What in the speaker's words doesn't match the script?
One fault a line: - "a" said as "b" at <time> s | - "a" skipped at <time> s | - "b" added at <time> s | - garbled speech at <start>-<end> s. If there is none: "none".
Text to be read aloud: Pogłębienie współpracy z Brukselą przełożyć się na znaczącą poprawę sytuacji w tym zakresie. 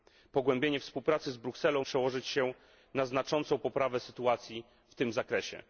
none